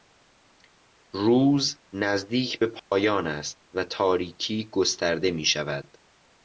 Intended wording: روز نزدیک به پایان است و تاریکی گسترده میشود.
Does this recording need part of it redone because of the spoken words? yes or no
no